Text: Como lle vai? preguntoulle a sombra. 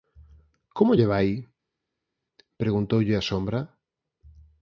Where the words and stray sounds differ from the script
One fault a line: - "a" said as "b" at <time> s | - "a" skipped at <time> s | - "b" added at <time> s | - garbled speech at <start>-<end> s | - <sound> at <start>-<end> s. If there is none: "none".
none